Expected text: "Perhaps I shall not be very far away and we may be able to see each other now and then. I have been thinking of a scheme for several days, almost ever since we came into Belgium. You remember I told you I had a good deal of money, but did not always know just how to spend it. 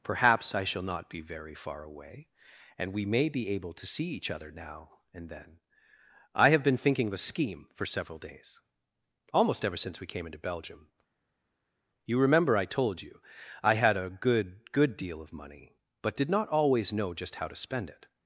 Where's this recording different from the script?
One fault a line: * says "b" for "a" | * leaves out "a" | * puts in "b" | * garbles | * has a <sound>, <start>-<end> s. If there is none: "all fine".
* puts in "good"